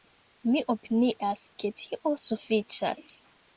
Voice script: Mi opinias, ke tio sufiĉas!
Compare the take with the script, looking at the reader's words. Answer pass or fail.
pass